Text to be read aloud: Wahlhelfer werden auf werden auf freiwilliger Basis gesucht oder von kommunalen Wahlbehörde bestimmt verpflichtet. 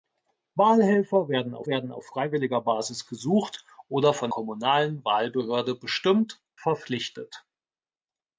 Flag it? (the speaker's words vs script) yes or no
no